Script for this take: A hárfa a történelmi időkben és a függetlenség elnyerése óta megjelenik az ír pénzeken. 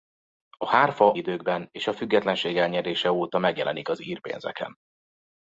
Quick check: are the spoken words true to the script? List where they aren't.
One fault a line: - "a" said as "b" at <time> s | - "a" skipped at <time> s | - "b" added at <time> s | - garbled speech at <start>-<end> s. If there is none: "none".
- "a történelmi" skipped at 1.1 s